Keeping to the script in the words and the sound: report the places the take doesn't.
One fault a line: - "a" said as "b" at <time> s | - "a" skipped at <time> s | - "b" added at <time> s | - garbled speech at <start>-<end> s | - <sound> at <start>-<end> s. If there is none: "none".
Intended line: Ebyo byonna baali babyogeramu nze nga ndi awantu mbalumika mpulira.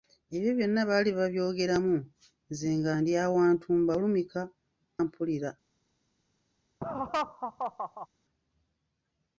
- laugh at 6.8-8.1 s